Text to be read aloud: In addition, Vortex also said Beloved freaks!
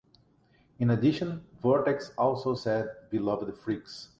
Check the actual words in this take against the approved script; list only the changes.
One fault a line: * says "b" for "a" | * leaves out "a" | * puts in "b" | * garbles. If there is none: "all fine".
all fine